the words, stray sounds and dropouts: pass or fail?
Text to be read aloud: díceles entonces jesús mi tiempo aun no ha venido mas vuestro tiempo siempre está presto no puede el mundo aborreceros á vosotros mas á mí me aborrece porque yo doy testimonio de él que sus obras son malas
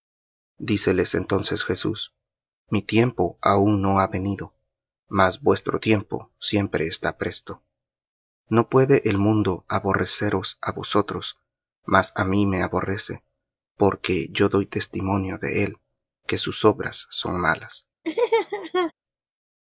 fail